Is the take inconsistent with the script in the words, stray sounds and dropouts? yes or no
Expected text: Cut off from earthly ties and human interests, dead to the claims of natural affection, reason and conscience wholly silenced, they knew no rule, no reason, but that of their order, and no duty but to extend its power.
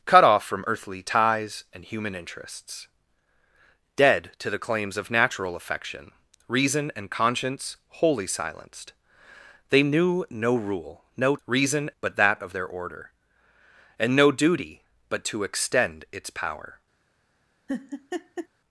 yes